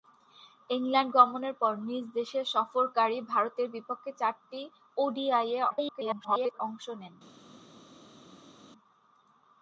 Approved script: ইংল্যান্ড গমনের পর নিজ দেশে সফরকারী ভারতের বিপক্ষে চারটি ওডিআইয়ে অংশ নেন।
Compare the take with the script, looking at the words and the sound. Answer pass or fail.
fail